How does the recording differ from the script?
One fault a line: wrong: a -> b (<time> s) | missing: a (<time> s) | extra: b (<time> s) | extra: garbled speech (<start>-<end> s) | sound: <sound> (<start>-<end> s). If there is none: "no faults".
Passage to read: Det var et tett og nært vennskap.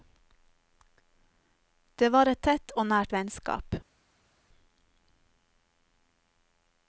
no faults